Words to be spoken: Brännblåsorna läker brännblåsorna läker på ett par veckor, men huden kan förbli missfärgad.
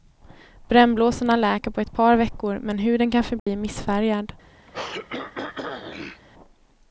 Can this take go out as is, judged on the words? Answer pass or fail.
fail